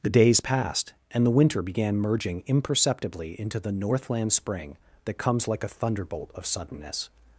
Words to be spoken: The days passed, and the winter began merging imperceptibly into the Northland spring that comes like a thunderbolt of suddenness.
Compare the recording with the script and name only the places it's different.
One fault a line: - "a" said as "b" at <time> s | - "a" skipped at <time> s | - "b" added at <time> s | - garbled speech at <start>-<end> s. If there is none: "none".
none